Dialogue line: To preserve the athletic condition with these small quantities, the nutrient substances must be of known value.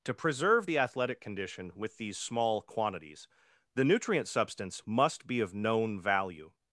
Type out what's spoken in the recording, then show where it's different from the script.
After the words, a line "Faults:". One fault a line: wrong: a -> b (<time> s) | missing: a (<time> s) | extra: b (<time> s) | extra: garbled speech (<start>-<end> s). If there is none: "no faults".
To preserve the athletic condition with these small quantities, the nutrient substance must be of known value.
Faults:
wrong: substances -> substance (4.3 s)